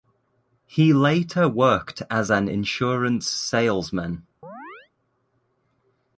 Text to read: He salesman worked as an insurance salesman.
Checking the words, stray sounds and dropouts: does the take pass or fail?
fail